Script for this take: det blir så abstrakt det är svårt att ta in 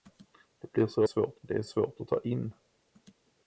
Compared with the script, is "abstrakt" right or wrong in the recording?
wrong